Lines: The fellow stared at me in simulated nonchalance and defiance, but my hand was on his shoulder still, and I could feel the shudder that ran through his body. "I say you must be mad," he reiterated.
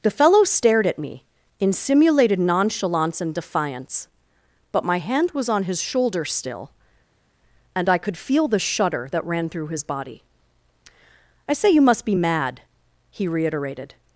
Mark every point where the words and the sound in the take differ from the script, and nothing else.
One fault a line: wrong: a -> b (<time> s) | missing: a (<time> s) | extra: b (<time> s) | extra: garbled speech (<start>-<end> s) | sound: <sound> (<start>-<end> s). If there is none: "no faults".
no faults